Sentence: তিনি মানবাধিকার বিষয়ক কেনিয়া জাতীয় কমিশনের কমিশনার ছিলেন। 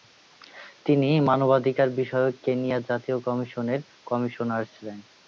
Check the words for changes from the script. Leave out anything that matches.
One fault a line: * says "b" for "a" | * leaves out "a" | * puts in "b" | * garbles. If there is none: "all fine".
all fine